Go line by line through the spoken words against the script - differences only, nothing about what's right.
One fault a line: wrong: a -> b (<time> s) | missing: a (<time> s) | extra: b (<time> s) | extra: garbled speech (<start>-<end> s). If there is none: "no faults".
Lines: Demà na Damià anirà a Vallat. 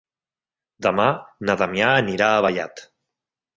no faults